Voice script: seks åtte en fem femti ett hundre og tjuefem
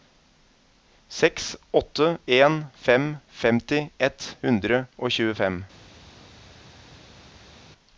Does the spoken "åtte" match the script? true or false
true